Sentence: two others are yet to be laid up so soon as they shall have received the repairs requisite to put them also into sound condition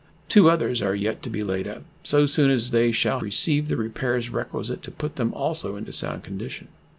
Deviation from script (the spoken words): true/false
true